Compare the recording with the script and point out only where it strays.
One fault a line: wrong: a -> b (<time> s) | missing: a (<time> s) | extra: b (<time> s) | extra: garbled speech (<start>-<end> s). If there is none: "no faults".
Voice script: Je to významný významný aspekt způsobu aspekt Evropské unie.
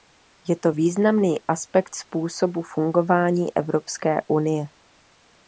missing: významný (1.4 s)
wrong: aspekt -> fungování (2.6 s)